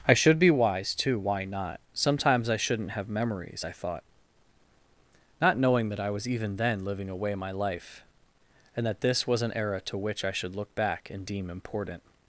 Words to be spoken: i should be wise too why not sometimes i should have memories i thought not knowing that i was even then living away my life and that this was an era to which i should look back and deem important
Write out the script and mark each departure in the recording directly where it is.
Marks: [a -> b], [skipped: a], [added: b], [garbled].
i should be wise too why not sometimes i [should -> shouldn't] have memories i thought not knowing that i was even then living away my life and that this was an era to which i should look back and deem important